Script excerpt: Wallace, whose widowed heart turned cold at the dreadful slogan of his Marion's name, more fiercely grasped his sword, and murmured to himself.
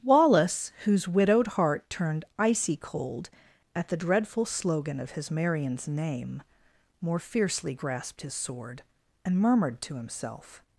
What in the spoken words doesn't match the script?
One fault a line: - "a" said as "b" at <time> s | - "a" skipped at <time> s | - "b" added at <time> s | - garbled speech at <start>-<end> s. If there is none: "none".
- "icy" added at 2.4 s